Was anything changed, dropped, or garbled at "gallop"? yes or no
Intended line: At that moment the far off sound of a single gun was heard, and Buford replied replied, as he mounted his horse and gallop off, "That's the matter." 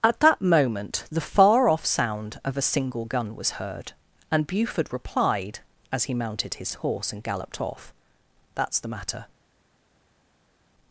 yes